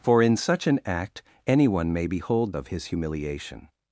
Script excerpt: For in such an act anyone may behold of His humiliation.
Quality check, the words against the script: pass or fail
pass